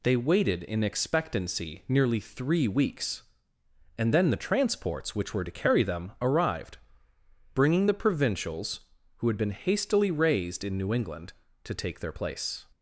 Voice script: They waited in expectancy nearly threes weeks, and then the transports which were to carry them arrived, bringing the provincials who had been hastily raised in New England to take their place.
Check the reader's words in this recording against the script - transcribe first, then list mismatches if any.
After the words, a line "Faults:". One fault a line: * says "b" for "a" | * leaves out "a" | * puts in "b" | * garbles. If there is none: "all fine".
They waited in expectancy nearly three weeks, and then the transports which were to carry them arrived, bringing the provincials who had been hastily raised in New England to take their place.
Faults:
* says "three" for "threes"